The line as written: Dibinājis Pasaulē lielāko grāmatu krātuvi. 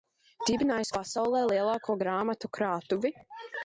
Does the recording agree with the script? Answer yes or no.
yes